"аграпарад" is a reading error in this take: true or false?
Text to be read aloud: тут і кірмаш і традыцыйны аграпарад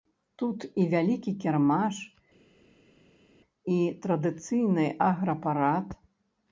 false